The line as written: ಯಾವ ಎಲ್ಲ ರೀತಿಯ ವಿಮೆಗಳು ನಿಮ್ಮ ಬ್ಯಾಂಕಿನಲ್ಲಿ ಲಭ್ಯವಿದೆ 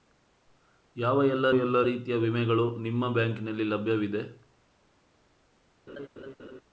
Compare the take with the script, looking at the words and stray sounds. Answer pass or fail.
fail